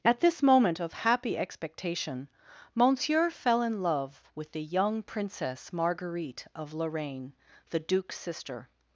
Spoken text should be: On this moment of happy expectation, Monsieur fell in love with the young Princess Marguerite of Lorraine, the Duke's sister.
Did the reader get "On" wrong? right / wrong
wrong